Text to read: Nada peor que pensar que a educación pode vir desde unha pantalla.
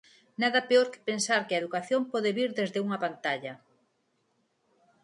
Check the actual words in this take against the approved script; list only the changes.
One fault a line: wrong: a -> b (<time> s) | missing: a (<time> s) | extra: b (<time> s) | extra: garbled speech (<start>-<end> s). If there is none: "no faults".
no faults